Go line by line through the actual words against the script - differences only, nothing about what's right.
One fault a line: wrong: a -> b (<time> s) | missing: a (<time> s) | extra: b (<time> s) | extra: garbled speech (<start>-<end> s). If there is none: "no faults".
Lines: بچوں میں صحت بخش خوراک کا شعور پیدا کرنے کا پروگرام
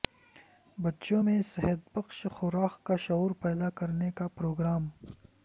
no faults